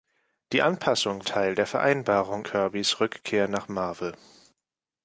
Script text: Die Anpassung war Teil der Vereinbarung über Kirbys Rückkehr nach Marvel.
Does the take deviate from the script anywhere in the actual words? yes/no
yes